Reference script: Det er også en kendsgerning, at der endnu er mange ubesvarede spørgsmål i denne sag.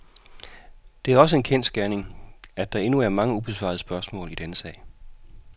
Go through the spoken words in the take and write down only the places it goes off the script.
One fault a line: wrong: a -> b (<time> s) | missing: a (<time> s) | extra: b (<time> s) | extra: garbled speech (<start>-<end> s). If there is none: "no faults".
no faults